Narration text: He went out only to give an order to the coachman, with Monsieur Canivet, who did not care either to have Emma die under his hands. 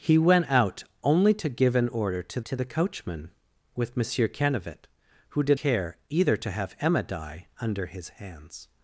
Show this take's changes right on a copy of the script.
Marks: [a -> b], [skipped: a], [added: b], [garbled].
He went out only to give an order to [added: to] the coachman, with Monsieur Canivet, who did [skipped: not] care either to have Emma die under his hands.